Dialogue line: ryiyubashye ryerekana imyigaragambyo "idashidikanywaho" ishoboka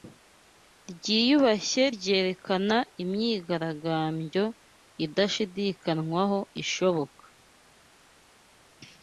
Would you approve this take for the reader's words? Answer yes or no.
yes